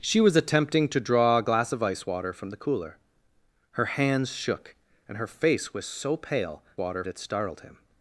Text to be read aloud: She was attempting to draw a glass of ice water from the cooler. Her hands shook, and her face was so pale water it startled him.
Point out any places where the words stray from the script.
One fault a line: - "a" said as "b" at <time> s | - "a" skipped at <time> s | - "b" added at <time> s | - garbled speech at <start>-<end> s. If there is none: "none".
none